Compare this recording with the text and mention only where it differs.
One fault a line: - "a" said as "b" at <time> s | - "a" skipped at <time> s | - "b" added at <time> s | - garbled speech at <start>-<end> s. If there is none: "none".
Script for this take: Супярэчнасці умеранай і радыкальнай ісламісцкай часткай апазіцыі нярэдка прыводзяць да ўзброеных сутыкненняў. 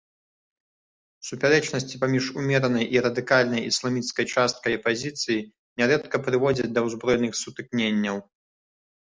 - "паміж" added at 2.0 s